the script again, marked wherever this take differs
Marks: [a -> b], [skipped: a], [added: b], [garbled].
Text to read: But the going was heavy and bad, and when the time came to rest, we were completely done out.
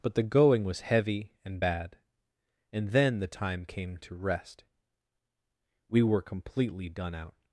But the going was heavy and bad, and [when -> then] the time came to rest, we were completely done out.